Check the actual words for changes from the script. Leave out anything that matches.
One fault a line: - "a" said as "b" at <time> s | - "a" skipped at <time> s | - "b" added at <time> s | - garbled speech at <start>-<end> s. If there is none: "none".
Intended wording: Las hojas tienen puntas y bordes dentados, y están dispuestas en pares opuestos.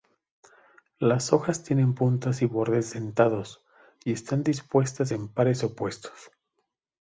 none